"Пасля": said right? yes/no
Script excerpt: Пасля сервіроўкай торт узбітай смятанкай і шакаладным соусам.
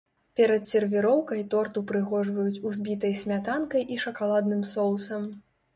no